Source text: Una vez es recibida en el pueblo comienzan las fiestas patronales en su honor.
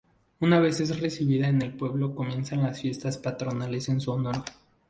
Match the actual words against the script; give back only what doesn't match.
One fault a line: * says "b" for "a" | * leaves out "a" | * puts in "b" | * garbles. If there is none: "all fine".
all fine